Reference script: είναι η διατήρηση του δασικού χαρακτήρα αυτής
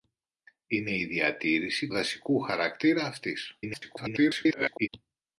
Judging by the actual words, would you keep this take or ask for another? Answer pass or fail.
fail